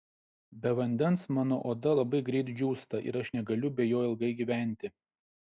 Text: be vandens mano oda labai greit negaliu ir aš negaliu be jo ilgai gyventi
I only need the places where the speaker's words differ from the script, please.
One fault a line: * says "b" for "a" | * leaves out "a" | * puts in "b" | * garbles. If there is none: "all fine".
* says "džiūsta" for "negaliu"